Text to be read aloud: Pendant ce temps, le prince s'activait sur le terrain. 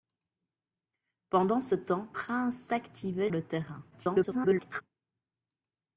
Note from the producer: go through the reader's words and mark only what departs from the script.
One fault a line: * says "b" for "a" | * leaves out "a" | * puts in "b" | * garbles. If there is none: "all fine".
* leaves out "le"
* leaves out "sur"
* garbles